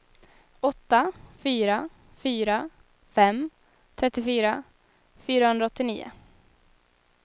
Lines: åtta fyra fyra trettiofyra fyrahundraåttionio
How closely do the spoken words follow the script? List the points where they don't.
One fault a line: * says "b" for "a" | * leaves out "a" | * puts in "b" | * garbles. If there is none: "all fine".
* puts in "fem"